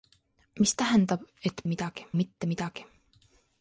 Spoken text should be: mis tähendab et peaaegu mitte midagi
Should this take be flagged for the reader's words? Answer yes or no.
yes